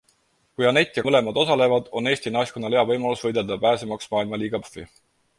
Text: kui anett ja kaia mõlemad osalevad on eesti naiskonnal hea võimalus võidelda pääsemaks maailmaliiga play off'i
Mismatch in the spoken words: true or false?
true